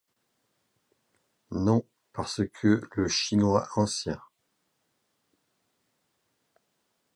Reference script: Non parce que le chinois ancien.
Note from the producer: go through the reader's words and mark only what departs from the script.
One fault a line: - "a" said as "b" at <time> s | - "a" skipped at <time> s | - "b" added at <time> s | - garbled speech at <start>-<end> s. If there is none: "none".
none